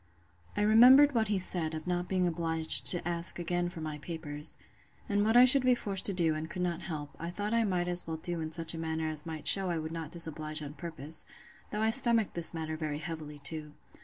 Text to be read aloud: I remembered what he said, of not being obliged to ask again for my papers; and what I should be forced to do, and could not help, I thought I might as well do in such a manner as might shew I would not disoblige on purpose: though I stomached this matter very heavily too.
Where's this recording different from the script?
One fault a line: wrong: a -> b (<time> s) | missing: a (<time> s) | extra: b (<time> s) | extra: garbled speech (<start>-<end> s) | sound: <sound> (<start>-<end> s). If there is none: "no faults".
no faults